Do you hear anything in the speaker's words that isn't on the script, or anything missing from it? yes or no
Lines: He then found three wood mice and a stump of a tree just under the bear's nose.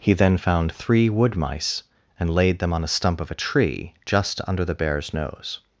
yes